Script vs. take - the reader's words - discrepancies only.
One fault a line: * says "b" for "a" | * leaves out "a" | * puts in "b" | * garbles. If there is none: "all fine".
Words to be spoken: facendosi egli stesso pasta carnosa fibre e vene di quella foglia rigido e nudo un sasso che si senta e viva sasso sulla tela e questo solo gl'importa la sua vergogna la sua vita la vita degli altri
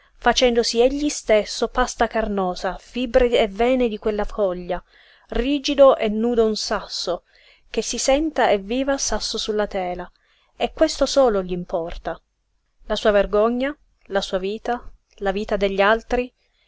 all fine